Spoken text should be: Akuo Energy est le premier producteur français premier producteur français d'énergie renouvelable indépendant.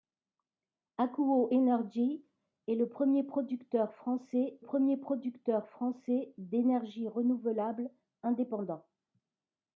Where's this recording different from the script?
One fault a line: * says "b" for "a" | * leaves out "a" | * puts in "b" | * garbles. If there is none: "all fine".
all fine